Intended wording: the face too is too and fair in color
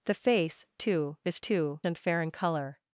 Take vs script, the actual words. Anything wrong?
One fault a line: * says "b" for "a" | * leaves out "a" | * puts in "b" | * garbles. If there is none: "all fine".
all fine